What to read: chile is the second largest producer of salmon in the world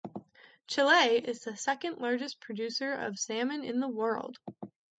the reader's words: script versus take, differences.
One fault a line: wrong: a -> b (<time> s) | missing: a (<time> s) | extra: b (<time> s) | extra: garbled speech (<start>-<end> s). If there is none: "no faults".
no faults